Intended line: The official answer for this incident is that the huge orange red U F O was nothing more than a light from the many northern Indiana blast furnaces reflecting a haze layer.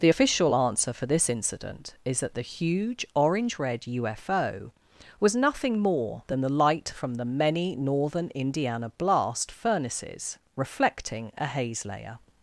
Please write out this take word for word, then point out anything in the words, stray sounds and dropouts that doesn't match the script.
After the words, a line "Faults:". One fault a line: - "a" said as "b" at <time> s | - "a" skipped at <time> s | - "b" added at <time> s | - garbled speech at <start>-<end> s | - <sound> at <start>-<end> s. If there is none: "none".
The official answer for this incident is that the huge orange red U F O was nothing more than the light from the many northern Indiana blast furnaces reflecting a haze layer.
Faults:
- "a" said as "the" at 6.4 s